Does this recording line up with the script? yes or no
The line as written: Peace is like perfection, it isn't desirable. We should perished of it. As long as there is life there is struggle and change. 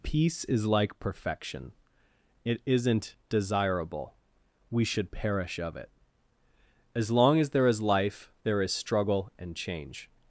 no